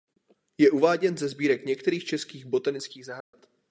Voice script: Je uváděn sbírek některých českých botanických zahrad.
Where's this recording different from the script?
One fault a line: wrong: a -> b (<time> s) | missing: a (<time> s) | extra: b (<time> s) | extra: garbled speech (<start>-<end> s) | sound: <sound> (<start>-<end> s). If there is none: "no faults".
extra: ze (1.2 s)
sound: dropout (3.2-3.3 s)